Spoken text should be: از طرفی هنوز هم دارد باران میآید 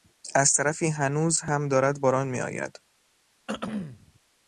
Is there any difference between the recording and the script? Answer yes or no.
no